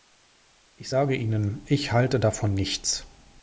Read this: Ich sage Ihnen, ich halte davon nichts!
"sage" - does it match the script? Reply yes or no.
yes